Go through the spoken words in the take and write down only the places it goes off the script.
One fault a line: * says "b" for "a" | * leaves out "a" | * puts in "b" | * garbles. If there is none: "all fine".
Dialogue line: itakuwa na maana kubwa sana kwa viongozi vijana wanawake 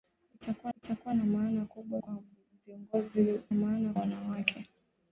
* puts in "itakuwa"
* leaves out "sana"
* says "maana" for "vijana"